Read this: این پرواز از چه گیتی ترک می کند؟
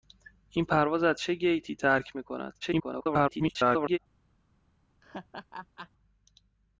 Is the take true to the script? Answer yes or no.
no